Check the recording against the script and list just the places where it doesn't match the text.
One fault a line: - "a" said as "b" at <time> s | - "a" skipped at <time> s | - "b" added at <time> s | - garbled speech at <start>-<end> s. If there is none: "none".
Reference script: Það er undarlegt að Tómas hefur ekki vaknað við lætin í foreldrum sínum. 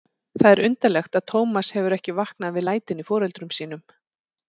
none